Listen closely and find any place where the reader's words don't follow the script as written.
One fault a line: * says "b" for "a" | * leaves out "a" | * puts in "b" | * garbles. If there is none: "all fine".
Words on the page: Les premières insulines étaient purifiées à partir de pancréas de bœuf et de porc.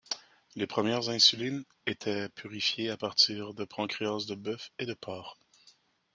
all fine